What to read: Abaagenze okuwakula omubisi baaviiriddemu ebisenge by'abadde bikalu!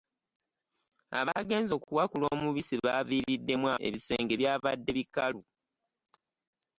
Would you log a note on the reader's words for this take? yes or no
no